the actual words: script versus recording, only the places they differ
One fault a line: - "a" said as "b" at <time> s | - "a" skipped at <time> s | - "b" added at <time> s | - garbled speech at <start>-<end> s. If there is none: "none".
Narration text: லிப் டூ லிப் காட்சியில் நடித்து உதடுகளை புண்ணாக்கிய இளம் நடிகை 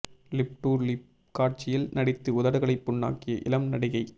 none